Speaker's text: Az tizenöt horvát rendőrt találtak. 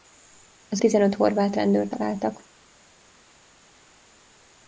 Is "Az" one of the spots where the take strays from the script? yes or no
no